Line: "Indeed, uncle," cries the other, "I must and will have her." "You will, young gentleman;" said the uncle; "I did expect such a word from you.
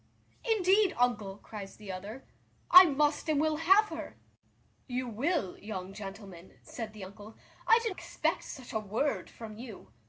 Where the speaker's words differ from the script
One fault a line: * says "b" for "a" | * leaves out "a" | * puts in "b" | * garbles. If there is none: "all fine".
all fine